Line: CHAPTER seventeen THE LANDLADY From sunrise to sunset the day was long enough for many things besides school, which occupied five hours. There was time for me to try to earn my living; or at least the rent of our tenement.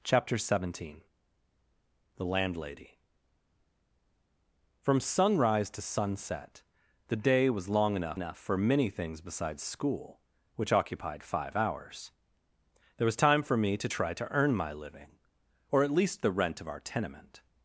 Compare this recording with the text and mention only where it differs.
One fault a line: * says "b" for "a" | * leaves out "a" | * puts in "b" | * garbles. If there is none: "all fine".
* puts in "enough"